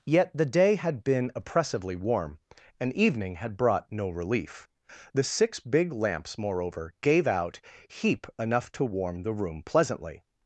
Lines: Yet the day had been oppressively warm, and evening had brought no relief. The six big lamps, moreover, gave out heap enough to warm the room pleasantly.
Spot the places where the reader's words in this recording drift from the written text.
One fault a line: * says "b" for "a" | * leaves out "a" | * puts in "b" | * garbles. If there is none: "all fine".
all fine